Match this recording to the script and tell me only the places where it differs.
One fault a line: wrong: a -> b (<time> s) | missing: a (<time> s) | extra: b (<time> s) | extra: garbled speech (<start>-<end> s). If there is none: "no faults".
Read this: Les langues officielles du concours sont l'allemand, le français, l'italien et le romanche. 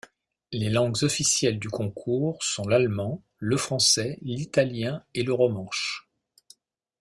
no faults